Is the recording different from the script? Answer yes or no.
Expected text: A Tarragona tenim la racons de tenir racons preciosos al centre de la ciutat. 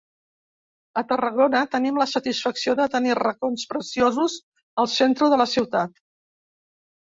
yes